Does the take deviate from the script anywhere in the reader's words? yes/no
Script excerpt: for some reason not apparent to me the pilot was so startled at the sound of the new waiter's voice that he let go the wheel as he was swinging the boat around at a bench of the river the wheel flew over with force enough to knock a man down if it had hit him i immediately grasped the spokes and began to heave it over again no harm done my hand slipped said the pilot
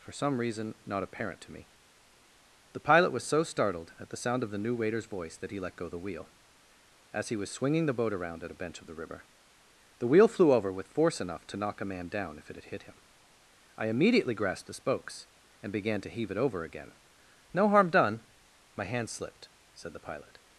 no